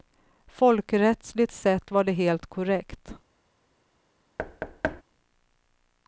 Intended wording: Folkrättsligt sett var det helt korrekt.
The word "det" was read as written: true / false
true